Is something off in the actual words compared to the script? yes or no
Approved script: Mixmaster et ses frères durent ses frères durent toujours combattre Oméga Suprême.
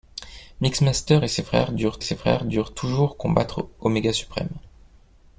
no